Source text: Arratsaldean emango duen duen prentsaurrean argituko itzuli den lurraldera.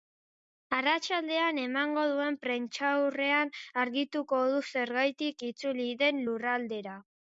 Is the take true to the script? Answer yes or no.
no